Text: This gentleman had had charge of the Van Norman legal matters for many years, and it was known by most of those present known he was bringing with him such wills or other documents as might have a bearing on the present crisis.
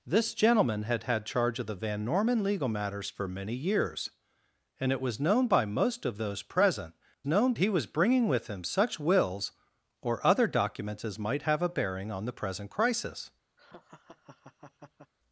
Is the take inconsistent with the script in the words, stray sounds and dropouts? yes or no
yes